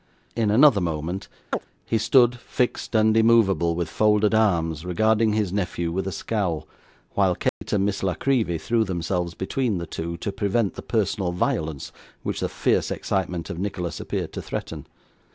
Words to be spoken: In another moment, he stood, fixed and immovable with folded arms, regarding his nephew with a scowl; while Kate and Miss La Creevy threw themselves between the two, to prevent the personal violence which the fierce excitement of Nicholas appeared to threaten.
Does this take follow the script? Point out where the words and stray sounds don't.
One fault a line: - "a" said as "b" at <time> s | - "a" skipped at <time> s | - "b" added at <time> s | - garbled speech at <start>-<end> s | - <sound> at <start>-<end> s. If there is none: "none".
- chirp at 1.5-1.7 s
- dropout at 7.5-7.6 s